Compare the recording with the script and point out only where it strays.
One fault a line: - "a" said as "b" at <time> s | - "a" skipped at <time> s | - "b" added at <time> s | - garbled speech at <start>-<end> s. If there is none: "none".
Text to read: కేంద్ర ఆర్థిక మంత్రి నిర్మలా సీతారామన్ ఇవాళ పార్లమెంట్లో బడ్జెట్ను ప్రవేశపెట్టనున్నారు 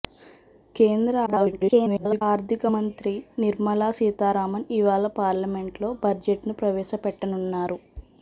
- garbled speech at 1.3-2.2 s